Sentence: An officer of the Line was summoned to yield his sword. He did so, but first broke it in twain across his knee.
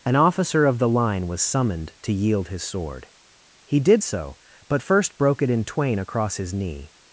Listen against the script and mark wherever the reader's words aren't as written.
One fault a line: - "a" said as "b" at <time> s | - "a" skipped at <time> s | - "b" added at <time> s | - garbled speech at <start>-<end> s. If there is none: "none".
none